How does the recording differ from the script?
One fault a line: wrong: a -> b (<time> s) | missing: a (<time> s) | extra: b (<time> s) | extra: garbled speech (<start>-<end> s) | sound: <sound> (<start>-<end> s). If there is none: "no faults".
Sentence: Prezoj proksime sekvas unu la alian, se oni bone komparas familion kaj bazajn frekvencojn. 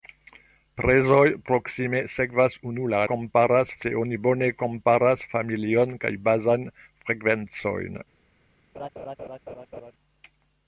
wrong: alian -> komparas (3.1 s)
sound: laugh (8.7-9.9 s)